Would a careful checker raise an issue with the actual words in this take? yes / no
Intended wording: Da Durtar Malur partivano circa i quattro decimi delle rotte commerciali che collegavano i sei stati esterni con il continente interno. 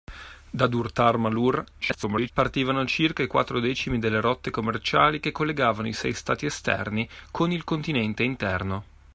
yes